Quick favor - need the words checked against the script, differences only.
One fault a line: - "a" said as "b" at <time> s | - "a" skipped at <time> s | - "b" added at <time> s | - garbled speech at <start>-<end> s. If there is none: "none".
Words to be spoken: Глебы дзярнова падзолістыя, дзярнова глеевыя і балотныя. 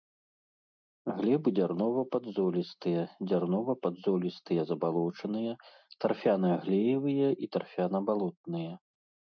- "падзолістыя забалочаныя тарфяна" added at 3.9 s
- "тарфяна" added at 7.6 s